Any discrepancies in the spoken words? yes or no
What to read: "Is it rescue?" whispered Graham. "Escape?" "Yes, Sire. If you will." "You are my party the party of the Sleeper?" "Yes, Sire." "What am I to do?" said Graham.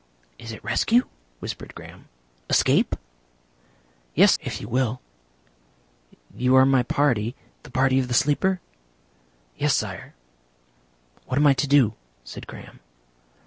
yes